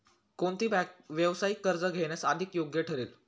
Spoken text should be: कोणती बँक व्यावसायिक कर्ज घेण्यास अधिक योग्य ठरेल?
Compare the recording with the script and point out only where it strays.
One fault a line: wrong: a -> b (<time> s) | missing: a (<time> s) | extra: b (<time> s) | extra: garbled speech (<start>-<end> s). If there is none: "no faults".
no faults